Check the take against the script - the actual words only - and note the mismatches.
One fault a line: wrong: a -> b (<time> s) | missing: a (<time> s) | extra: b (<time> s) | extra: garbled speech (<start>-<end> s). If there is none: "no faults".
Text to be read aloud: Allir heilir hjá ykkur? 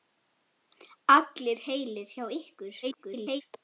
extra: garbled speech (2.8-3.4 s)